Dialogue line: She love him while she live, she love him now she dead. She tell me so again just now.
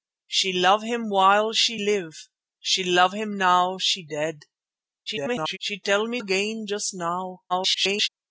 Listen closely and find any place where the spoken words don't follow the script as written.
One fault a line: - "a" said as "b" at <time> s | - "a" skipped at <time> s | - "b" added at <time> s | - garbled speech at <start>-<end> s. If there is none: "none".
- garbled speech at 5.1-5.6 s
- "so" skipped at 6.2 s
- garbled speech at 7.5-8.1 s